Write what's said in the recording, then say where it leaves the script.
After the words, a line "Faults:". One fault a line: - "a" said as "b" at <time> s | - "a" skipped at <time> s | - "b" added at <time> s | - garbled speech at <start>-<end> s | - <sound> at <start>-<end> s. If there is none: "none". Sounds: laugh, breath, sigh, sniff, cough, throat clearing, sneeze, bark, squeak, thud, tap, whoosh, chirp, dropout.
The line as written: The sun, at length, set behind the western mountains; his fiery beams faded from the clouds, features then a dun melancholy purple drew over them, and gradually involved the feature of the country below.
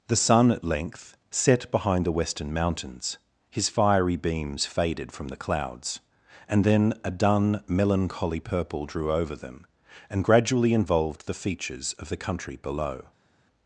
The sun, at length, set behind the western mountains; his fiery beams faded from the clouds, and then a dun melancholy purple drew over them, and gradually involved the features of the country below.
Faults:
- "features" said as "and" at 6.5 s
- "feature" said as "features" at 11.3 s